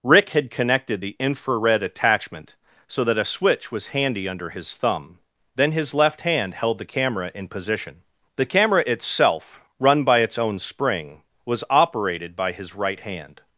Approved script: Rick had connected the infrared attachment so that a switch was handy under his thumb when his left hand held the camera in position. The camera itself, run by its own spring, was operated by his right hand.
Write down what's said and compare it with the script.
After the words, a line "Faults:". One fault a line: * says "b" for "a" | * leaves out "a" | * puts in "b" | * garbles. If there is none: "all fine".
Rick had connected the infrared attachment so that a switch was handy under his thumb then his left hand held the camera in position. The camera itself, run by its own spring, was operated by his right hand.
Faults:
* says "then" for "when"